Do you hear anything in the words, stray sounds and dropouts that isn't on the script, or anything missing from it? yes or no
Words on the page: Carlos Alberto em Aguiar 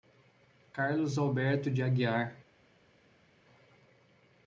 yes